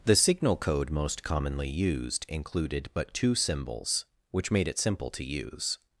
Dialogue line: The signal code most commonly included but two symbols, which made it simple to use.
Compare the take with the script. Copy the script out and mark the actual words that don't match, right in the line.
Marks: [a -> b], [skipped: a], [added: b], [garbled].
The signal code most commonly [added: used] included but two symbols, which made it simple to use.